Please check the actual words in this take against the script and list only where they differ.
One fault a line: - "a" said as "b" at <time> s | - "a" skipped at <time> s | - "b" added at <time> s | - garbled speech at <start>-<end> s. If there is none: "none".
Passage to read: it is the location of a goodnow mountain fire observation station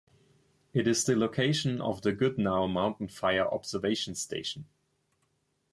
- "a" said as "the" at 2.0 s